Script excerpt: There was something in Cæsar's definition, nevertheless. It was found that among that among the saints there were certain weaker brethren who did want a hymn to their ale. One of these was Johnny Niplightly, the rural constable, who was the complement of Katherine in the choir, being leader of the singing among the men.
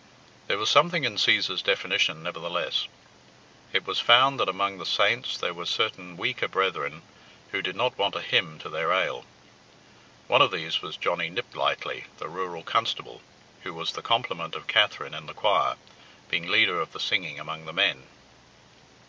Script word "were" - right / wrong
right